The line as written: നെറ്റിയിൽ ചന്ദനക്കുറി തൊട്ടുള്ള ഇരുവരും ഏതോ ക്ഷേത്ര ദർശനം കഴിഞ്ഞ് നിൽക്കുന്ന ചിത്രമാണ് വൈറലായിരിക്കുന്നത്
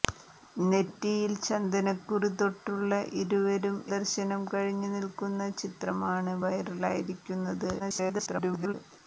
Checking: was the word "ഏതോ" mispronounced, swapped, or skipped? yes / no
yes